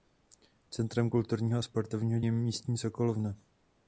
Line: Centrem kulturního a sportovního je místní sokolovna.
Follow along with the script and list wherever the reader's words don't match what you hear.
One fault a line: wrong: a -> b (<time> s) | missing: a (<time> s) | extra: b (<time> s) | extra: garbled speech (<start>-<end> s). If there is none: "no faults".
no faults